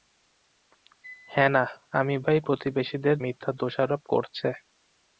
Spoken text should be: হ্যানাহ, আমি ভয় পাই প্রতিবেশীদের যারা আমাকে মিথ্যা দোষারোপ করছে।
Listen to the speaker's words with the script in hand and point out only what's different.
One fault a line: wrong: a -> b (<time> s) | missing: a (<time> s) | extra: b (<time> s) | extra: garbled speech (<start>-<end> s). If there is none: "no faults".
missing: ভয় (2.1 s)
missing: যারা আমাকে (3.2 s)